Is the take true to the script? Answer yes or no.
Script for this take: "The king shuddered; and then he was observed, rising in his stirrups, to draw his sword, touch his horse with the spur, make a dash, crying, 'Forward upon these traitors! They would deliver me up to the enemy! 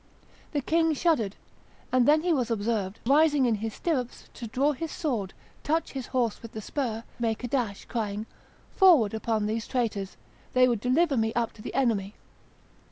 yes